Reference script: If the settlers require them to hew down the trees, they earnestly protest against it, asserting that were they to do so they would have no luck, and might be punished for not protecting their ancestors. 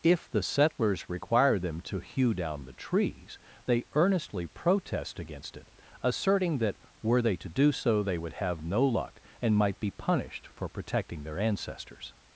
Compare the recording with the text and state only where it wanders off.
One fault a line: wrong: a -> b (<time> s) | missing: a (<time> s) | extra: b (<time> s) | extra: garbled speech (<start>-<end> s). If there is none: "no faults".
missing: not (10.7 s)